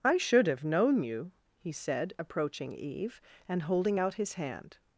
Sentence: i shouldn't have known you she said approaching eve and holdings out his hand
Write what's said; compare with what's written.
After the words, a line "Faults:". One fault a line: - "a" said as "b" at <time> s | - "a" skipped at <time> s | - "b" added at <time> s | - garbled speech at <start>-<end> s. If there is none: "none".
i should have known you he said approaching eve and holding out his hand
Faults:
- "shouldn't" said as "should" at 0.2 s
- "she" said as "he" at 1.6 s
- "holdings" said as "holding" at 3.6 s